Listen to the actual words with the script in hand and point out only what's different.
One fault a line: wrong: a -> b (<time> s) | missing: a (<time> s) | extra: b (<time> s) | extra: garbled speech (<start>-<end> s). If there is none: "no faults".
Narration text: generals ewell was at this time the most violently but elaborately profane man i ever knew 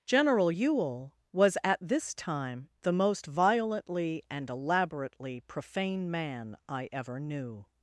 wrong: generals -> general (0.1 s)
wrong: but -> and (4.3 s)